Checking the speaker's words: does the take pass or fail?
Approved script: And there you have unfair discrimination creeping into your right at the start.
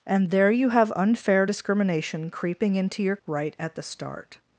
pass